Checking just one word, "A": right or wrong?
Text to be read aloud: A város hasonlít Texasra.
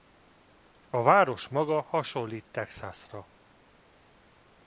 right